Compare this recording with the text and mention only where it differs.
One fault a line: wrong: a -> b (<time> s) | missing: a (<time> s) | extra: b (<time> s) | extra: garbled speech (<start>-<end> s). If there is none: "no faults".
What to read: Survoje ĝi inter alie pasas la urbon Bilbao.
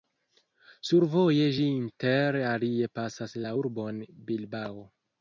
no faults